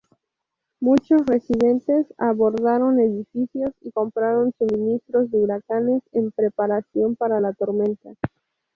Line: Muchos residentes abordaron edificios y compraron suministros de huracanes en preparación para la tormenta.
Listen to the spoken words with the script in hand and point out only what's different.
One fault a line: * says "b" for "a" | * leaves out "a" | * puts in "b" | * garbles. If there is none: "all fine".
all fine